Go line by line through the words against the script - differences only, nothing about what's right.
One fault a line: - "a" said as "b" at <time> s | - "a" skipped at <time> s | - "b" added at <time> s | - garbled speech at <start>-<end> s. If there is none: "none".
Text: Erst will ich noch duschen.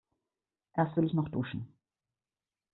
none